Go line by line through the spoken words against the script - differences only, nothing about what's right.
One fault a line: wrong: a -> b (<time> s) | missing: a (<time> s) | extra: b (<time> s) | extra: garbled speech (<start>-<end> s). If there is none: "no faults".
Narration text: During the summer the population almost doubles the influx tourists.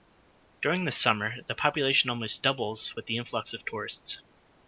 extra: with (2.9 s)
extra: of (3.5 s)